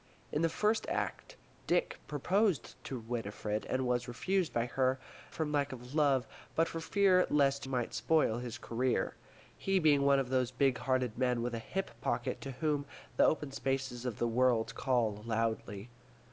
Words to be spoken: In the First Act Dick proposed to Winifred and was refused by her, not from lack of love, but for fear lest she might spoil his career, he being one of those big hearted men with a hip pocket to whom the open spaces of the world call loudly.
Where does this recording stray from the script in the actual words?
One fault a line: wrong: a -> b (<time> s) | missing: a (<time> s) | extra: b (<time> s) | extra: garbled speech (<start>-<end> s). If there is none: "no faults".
missing: not (5.0 s)
missing: she (7.7 s)